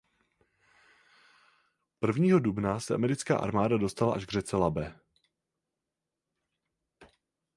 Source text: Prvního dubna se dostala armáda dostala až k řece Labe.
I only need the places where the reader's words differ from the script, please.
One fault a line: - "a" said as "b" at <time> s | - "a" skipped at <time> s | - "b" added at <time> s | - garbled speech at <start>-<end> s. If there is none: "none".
- "dostala" said as "americká" at 3.0 s